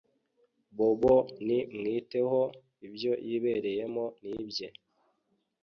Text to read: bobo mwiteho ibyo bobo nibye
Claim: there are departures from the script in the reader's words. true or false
true